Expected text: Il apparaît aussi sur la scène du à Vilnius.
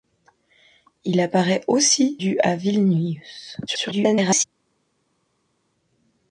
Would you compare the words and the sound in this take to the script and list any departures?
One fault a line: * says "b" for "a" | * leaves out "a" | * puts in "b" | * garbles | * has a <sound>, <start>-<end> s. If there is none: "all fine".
* leaves out "sur la scène"
* garbles